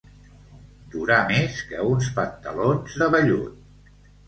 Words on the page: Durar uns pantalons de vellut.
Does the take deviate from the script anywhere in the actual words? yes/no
yes